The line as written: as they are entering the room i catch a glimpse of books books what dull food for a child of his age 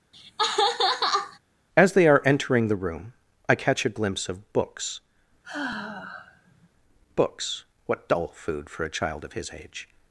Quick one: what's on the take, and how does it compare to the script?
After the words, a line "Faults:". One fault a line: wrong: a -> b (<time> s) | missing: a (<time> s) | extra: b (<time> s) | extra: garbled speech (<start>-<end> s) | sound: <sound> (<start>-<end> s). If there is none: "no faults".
as they are entering the room i catch a glimpse of books books what dull food for a child of his age
Faults:
sound: laugh (0.1-1.4 s)
sound: sigh (5.4-6.7 s)